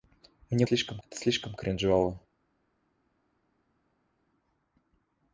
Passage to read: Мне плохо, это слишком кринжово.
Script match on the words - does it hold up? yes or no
no